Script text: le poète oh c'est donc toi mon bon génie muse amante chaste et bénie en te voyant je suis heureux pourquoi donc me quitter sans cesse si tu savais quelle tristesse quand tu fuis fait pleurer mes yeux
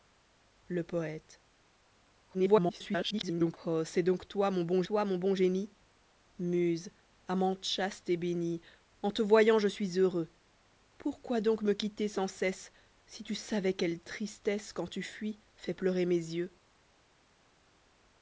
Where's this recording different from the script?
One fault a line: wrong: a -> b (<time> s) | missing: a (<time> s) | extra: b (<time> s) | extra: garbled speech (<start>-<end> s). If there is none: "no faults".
extra: garbled speech (2.3-3.6 s)
extra: toi mon bon (4.8 s)